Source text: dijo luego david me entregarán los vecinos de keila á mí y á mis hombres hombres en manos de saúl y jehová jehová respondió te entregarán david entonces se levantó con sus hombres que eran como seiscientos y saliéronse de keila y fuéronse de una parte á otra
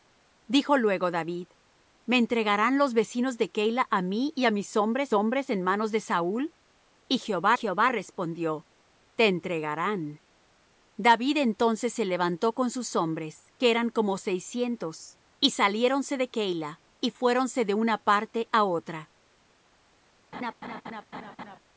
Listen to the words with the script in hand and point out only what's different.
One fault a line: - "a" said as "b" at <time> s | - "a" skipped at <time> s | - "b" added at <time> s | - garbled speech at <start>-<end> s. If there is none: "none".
none